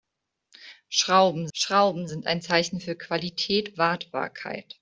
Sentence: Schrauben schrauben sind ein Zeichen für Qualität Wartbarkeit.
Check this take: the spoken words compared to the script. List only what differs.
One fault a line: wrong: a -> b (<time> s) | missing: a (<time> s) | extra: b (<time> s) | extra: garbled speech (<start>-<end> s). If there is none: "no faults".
no faults